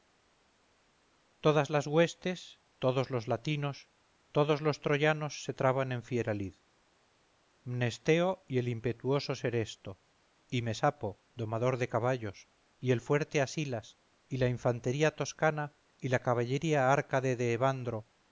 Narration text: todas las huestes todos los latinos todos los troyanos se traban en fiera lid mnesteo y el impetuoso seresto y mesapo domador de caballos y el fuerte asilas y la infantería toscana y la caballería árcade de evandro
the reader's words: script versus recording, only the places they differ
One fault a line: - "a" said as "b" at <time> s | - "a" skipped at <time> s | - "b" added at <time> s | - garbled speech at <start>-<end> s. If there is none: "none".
none